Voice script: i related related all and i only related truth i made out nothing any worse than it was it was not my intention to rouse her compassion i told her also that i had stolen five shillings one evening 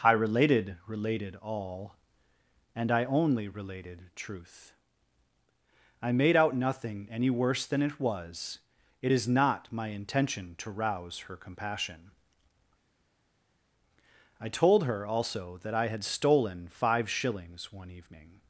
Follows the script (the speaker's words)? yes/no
no